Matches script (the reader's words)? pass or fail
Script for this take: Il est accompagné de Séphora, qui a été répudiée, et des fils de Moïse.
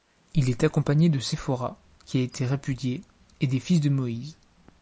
pass